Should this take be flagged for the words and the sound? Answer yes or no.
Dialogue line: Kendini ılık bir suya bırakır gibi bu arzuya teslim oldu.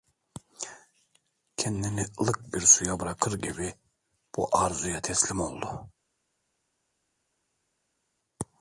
no